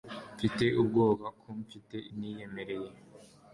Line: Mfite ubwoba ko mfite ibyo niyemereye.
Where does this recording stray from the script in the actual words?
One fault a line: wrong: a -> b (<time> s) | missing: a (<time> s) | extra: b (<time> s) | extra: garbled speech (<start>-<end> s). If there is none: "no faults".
missing: ibyo (2.0 s)